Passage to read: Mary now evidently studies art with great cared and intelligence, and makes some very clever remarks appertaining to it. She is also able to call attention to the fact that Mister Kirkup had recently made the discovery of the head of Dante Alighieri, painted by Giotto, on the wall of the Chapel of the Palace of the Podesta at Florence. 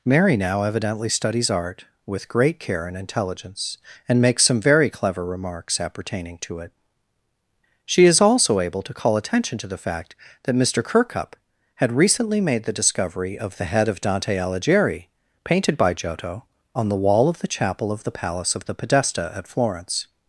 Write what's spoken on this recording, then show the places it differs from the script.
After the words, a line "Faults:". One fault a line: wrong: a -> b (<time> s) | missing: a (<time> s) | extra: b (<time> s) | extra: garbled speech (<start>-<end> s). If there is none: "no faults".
Mary now evidently studies art with great care and intelligence, and makes some very clever remarks appertaining to it. She is also able to call attention to the fact that Mister Kirkup had recently made the discovery of the head of Dante Alighieri, painted by Giotto, on the wall of the Chapel of the Palace of the Podesta at Florence.
Faults:
wrong: cared -> care (2.6 s)